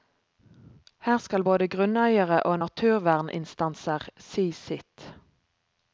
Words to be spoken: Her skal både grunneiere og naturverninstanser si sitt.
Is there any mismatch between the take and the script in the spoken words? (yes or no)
no